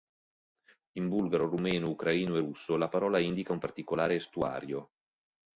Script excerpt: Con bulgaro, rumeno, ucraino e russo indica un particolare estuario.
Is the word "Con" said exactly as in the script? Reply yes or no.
no